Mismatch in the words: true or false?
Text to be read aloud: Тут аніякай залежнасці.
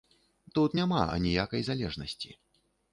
true